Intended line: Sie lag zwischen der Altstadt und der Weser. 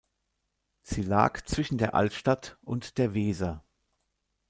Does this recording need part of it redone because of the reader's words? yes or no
no